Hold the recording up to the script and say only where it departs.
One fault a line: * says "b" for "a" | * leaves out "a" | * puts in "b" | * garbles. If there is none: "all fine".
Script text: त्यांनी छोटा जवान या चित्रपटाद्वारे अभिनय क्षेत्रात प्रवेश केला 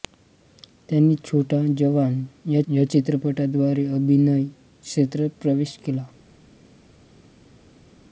* puts in "या"